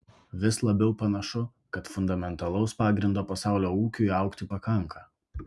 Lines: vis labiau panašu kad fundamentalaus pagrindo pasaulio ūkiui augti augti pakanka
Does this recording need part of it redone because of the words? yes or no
yes